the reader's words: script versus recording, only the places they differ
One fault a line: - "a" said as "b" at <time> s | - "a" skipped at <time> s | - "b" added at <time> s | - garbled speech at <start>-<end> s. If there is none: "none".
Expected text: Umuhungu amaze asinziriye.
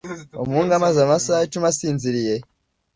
- "amasaha icumi" added at 1.0 s